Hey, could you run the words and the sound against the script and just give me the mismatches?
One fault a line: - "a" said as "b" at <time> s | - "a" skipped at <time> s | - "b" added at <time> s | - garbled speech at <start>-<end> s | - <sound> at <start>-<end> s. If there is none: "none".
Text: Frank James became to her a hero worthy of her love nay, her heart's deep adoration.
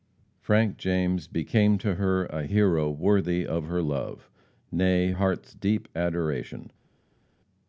- "her" skipped at 5.1 s